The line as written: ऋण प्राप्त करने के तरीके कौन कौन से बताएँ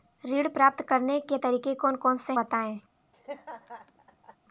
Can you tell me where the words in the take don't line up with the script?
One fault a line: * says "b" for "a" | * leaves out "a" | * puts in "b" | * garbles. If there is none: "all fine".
all fine